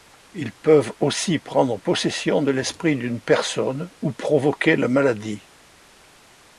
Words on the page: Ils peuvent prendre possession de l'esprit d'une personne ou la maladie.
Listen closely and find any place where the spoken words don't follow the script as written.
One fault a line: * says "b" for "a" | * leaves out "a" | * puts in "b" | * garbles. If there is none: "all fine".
* puts in "aussi"
* puts in "provoquer"